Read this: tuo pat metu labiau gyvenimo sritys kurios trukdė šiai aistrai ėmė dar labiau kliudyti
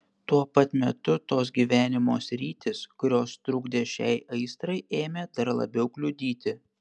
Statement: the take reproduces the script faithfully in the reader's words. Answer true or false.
false